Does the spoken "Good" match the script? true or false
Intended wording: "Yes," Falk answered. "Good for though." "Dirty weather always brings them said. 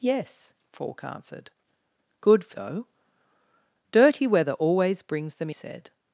true